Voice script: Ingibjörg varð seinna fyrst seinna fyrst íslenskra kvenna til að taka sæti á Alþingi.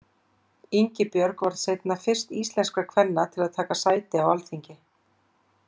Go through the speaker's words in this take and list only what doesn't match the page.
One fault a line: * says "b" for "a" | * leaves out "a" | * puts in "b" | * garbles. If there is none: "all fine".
* leaves out "seinna fyrst"